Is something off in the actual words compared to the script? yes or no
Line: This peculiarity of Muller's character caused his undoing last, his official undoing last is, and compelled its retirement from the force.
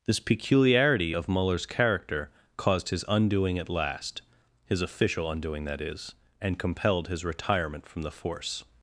yes